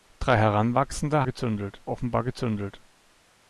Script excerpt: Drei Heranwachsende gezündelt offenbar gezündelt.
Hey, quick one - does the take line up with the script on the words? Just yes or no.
yes